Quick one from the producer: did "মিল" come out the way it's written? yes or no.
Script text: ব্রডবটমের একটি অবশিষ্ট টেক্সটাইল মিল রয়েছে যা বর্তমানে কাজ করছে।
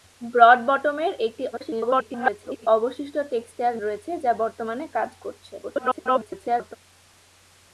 no